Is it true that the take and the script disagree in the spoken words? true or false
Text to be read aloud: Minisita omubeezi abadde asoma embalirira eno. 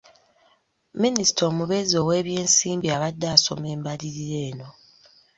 true